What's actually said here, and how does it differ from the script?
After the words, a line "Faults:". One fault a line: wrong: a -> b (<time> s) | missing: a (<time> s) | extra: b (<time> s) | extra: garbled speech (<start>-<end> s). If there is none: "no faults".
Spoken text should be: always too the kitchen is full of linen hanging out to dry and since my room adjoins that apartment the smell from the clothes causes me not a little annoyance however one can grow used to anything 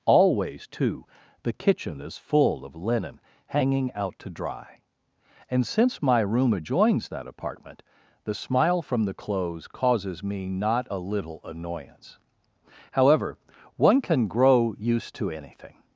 always too the kitchen is full of linen hanging out to dry and since my room adjoins that apartment the smile from the clothes causes me not a little annoyance however one can grow used to anything
Faults:
wrong: smell -> smile (8.3 s)